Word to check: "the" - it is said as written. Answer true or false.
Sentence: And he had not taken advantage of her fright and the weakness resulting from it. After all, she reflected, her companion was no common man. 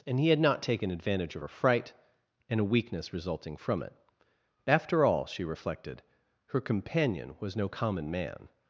false